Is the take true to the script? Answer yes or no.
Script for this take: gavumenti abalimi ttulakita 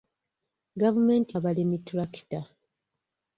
yes